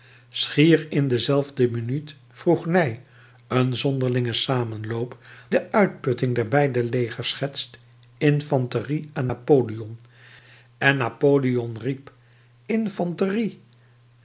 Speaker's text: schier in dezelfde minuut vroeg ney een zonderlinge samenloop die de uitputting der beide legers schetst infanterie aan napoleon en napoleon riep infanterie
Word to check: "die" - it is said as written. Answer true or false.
false